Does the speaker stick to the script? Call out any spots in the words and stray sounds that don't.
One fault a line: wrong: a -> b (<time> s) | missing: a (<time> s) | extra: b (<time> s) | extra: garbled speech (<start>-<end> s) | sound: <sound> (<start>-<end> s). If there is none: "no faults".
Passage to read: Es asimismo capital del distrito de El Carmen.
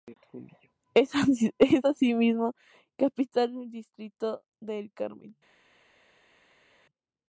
no faults